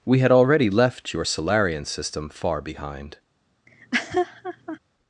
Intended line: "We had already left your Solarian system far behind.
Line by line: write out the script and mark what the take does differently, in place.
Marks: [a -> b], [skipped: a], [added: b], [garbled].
"We had already left your Solarian system far behind.